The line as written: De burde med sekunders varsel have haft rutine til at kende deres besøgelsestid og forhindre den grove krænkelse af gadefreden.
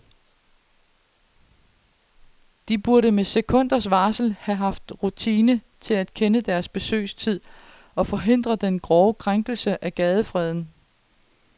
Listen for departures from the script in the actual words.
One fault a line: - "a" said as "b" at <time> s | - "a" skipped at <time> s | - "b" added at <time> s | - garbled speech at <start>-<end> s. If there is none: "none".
none